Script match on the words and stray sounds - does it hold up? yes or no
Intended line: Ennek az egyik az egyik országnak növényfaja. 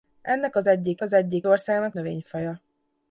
yes